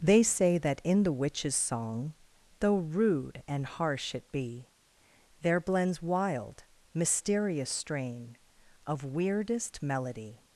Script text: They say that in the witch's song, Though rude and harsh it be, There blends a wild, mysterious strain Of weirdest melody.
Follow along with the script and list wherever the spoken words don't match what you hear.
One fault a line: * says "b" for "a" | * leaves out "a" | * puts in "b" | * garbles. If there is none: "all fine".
* leaves out "a"